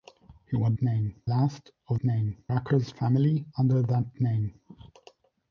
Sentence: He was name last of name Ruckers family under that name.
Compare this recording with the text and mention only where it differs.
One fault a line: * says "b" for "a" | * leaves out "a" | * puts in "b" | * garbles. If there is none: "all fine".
all fine